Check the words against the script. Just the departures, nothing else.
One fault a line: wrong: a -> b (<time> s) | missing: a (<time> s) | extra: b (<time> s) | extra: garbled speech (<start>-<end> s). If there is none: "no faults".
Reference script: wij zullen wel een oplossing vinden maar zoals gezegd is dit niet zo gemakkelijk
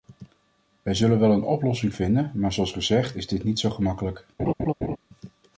no faults